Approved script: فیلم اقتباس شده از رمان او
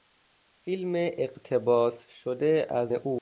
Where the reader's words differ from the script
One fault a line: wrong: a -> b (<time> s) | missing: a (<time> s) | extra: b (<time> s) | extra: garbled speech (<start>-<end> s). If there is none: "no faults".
missing: رمان (2.9 s)